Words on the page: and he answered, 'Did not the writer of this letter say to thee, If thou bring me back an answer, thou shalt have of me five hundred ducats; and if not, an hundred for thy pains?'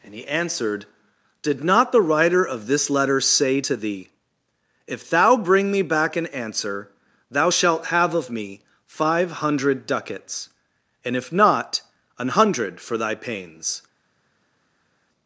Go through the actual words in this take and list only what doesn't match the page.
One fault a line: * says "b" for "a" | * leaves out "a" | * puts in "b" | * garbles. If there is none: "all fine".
all fine